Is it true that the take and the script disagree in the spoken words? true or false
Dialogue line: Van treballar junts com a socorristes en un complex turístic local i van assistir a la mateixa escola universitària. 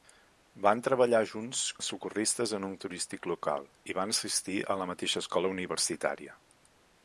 true